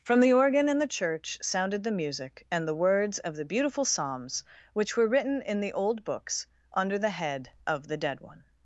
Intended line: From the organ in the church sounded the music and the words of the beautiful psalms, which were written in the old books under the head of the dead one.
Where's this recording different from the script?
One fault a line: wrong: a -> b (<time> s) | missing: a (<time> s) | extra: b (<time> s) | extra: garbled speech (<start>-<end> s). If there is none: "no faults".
no faults